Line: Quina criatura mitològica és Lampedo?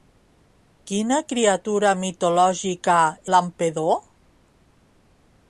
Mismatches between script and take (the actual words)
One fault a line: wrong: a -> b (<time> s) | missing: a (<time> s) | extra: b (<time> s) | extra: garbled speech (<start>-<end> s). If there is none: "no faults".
missing: és (3.0 s)